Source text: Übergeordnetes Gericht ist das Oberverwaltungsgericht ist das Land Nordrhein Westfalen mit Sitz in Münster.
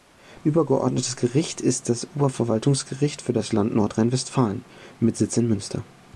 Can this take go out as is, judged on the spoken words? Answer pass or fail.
fail